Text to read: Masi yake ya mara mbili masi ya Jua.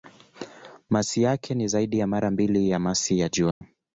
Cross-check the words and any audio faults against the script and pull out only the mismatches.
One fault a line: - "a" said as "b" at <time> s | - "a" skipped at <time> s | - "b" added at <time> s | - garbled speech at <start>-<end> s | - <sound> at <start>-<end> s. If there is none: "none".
- "ni zaidi" added at 1.6 s
- "ya" added at 2.7 s
- dropout at 3.5-3.6 s